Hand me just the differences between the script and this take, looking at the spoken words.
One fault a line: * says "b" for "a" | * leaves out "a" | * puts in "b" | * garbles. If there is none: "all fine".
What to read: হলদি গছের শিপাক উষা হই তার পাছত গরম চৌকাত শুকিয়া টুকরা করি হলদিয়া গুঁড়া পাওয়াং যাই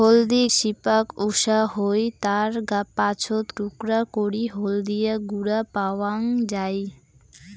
* leaves out "গছের"
* leaves out "গরম চৌকাত শুকিয়া"